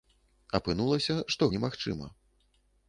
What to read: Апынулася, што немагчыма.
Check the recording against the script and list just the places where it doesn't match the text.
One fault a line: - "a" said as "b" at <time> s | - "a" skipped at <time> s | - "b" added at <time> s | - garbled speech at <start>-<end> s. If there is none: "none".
none